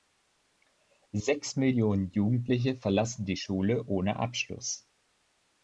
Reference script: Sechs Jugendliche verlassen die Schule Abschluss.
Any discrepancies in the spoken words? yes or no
yes